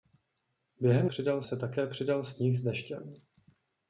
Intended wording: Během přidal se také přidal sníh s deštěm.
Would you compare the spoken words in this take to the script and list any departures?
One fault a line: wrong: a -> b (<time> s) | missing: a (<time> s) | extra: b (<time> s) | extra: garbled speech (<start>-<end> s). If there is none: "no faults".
no faults